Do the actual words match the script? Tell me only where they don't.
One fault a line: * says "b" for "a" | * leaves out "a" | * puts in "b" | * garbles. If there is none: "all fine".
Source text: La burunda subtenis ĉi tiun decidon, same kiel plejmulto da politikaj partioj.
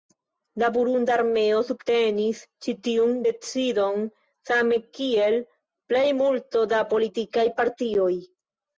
* puts in "armeo"